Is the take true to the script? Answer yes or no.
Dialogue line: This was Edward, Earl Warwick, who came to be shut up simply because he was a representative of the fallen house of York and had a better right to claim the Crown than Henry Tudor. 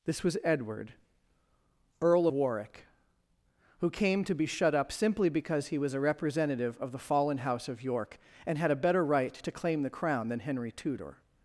yes